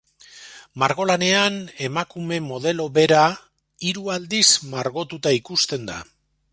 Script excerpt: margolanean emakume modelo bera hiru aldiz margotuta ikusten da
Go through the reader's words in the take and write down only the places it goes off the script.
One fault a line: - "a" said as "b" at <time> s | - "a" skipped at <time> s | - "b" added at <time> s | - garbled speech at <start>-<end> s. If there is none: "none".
none